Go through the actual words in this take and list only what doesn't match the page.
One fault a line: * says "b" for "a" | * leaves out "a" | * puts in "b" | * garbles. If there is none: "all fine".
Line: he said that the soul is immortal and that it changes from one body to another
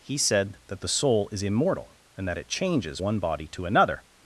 * leaves out "from"